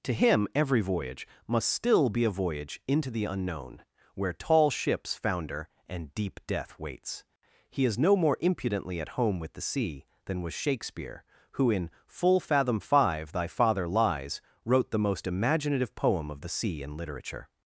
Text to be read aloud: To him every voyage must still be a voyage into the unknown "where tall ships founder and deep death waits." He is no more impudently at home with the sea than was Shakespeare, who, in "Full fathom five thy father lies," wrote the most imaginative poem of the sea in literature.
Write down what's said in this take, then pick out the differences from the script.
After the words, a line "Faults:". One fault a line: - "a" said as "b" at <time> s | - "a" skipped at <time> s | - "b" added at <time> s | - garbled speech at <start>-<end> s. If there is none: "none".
To him every voyage must still be a voyage into the unknown "where tall ships founder and deep death waits." He is no more impudently at home with the sea than was Shakespeare, who, in "Full fathom five thy father lies," wrote the most imaginative poem of the sea in literature.
Faults:
none